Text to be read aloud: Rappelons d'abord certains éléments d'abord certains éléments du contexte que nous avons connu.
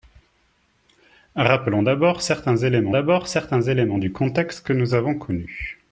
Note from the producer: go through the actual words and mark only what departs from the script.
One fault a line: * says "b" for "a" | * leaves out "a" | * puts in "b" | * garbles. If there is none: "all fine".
all fine